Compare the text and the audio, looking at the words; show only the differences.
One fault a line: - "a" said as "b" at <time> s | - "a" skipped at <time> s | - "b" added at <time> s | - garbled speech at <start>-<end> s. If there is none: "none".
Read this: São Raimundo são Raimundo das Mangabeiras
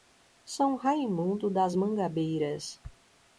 - "são Raimundo" skipped at 1.5 s